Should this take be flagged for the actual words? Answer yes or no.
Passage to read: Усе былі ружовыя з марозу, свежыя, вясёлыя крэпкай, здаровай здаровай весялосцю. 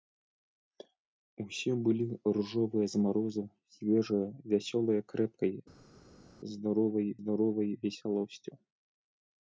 no